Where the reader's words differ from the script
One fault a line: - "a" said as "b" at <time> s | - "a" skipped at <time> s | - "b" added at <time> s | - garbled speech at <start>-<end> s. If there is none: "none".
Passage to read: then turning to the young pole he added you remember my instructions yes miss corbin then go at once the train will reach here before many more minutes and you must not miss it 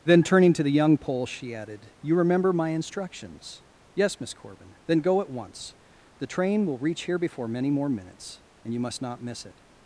- "he" said as "she" at 1.3 s